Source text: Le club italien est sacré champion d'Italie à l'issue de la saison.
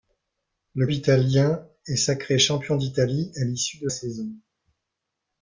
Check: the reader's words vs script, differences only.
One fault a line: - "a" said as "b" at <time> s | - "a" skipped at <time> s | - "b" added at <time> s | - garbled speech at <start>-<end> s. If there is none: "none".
- "club" skipped at 0.9 s
- "la" skipped at 3.9 s